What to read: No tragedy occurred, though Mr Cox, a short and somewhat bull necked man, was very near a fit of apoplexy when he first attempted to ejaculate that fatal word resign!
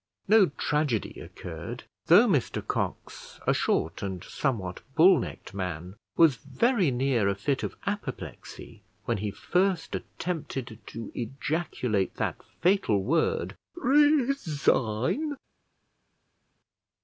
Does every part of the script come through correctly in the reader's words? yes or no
yes